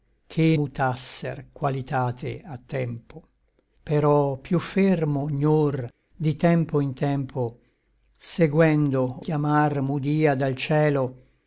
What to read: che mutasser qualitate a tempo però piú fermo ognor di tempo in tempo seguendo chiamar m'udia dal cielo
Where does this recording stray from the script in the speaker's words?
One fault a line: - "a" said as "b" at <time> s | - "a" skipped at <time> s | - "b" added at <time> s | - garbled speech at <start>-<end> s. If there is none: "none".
none